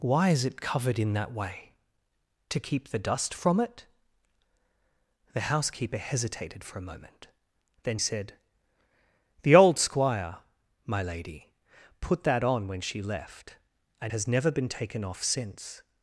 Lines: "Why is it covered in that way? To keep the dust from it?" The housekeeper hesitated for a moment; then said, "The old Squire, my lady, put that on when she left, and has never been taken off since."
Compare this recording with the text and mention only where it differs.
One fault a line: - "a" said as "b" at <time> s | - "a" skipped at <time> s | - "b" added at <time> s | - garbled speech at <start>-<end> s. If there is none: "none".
none